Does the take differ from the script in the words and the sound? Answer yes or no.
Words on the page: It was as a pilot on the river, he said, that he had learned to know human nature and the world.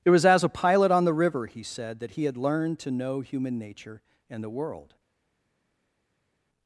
no